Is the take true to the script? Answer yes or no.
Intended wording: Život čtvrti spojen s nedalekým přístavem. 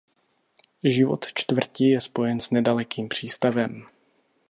no